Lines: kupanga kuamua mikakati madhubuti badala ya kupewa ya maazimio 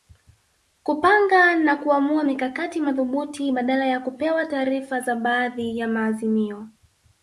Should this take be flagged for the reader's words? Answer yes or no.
yes